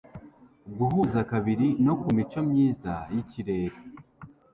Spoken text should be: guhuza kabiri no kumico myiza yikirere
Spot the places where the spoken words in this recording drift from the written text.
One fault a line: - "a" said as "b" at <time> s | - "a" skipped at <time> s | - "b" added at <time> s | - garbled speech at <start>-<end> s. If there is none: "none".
none